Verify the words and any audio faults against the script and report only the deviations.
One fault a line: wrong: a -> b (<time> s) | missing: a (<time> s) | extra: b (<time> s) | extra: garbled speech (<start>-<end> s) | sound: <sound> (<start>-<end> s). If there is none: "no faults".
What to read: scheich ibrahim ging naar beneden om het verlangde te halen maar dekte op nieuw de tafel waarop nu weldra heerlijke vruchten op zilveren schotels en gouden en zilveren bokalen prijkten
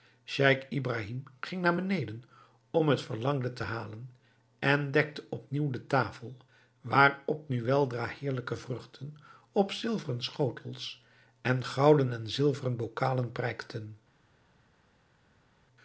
wrong: maar -> en (4.6 s)